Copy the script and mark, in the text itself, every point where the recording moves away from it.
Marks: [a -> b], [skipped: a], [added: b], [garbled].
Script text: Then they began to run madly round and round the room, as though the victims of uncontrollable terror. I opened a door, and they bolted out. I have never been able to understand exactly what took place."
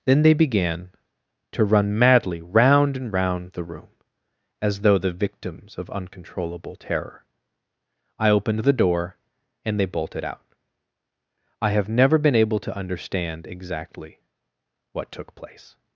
Then they began to run madly round and round the room, as though the victims of uncontrollable terror. I opened [a -> the] door, and they bolted out. I have never been able to understand exactly what took place."